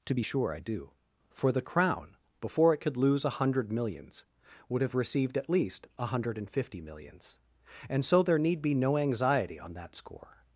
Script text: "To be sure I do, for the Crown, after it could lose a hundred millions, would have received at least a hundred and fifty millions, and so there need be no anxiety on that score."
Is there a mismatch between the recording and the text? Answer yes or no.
yes